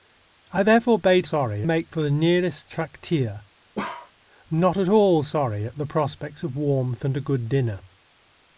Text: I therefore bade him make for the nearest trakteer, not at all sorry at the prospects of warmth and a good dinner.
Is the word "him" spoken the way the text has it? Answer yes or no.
no